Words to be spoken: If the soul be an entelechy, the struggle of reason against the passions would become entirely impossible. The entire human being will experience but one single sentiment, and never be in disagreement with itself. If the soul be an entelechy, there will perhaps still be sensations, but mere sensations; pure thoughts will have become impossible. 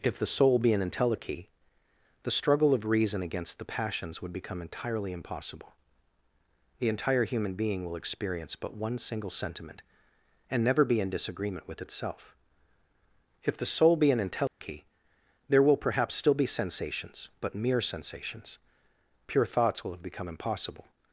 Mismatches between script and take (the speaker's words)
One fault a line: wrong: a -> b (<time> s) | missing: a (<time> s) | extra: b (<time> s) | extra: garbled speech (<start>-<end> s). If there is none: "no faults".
no faults